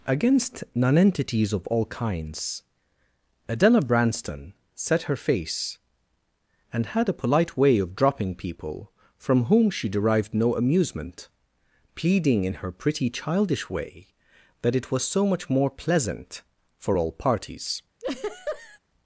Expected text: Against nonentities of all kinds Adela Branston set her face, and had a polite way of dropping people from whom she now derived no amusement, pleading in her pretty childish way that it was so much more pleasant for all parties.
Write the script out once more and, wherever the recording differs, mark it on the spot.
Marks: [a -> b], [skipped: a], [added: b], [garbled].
Against nonentities of all kinds Adela Branston set her face, and had a polite way of dropping people from whom she [skipped: now] derived no amusement, pleading in her pretty childish way that it was so much more pleasant for all parties.